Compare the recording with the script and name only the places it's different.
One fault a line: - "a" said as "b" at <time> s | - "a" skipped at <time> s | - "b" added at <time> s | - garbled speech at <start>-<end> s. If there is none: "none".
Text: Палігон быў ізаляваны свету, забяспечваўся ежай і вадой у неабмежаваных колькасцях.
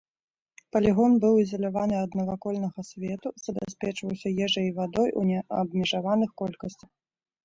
- "ад навакольнага" added at 2.0 s